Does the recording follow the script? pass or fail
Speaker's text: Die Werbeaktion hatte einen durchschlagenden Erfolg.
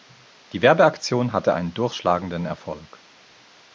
pass